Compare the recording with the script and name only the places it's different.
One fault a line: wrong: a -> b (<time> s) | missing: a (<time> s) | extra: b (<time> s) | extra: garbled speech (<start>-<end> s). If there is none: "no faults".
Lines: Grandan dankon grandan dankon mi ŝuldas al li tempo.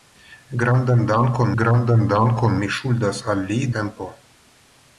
no faults